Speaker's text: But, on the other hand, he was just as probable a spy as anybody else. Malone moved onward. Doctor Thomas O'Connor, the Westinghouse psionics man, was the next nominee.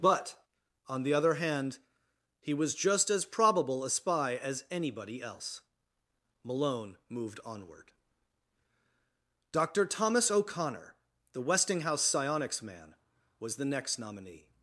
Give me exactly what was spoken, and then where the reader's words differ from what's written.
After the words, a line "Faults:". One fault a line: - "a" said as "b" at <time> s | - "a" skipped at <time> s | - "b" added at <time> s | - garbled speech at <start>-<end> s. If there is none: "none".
But, on the other hand, he was just as probable a spy as anybody else. Malone moved onward. Doctor Thomas O'Connor, the Westinghouse psionics man, was the next nominee.
Faults:
none